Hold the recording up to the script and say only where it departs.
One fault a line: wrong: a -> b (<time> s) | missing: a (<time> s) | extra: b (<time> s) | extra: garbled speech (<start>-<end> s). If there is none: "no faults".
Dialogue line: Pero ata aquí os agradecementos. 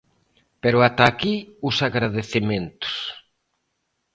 no faults